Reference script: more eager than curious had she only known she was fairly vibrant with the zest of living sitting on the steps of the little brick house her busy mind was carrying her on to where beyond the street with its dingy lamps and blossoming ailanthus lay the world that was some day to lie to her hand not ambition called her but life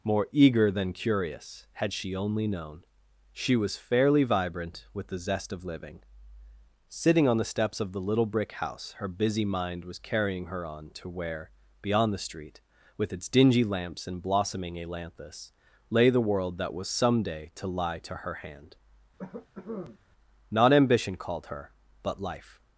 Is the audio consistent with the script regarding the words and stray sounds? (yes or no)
no